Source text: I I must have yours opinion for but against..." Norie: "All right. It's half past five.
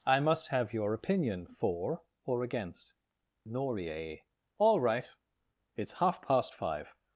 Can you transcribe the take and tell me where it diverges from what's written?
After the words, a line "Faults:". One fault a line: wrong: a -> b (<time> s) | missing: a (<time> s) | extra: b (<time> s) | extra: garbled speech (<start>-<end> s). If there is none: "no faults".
I must have your opinion for or against..." Norie: "All right. It's half past five.
Faults:
missing: I (0.2 s)
wrong: yours -> your (0.7 s)
wrong: but -> or (2.2 s)